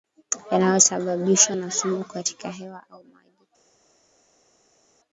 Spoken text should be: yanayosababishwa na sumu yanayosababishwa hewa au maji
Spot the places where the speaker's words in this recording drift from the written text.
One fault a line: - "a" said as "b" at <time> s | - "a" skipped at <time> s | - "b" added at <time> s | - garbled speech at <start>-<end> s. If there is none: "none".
- "yanayosababishwa" said as "katika" at 2.0 s